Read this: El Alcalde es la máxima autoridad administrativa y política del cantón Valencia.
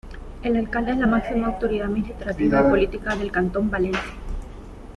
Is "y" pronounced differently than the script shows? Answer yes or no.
no